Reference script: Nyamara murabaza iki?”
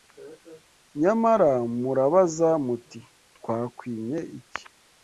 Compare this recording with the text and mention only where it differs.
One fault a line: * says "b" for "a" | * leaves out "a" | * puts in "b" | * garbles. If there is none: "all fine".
* puts in "muti Twakwimye"